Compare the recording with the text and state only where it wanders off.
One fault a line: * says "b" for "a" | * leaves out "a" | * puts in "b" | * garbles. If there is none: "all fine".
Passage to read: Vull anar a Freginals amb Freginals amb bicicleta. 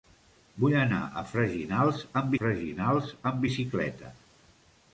all fine